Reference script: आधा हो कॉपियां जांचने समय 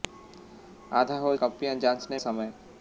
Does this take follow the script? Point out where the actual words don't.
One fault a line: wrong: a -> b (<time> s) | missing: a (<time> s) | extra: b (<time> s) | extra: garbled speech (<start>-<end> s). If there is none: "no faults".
no faults